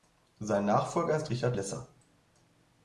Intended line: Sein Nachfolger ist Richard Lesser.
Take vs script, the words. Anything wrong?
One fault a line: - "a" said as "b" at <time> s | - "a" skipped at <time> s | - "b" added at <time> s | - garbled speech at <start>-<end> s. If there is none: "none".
none